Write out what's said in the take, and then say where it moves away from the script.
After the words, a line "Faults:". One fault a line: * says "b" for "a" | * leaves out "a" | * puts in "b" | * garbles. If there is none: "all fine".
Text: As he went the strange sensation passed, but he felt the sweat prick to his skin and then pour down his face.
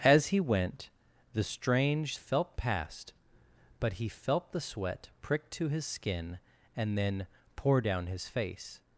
As he went the strange felt passed, but he felt the sweat prick to his skin and then pour down his face.
Faults:
* says "felt" for "sensation"